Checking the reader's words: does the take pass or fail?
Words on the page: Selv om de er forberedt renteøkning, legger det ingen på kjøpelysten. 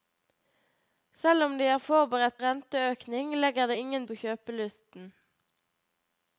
pass